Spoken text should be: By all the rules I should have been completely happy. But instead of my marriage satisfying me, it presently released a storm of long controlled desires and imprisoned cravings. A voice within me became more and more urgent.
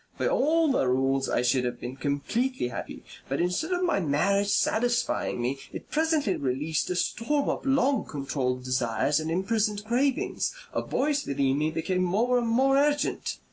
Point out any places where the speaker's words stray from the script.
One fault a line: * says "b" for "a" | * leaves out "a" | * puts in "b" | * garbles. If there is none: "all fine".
all fine